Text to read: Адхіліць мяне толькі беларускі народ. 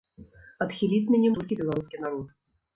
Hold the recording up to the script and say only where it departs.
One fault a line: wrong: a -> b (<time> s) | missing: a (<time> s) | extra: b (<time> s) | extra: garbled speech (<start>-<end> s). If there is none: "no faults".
no faults